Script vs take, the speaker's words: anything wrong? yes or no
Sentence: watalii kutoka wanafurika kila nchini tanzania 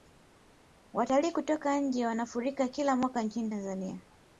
yes